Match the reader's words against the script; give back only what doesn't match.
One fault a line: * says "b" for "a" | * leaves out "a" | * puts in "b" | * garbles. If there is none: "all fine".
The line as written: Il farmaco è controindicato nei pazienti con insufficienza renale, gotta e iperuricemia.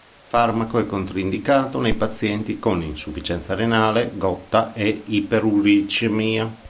all fine